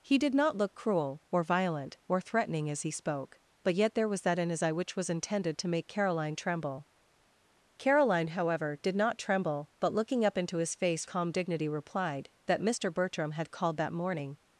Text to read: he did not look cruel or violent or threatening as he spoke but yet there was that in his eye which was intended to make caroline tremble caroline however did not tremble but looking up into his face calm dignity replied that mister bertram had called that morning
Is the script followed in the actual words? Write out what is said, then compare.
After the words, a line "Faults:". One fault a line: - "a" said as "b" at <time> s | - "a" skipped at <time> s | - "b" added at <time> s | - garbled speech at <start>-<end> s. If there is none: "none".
he did not look cruel or violent or threatening as he spoke but yet there was that in his eye which was intended to make caroline tremble caroline however did not tremble but looking up into his face calm dignity replied that mister bertram had called that morning
Faults:
none